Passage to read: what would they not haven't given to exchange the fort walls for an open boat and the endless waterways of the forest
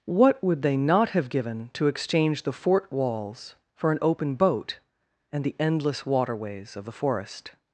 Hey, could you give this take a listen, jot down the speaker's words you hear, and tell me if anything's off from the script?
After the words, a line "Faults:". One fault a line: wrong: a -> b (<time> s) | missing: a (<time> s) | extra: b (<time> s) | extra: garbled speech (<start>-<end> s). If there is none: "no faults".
what would they not have given to exchange the fort walls for an open boat and the endless waterways of the forest
Faults:
wrong: haven't -> have (1.1 s)